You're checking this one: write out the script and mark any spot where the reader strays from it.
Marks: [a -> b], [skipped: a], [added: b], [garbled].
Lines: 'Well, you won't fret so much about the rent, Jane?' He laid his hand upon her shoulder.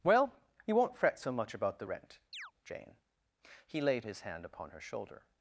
'Well, you won't fret so much about the rent, Jane?' He laid his hand upon her shoulder.